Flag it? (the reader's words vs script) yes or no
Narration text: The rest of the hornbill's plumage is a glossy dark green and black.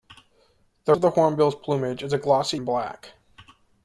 yes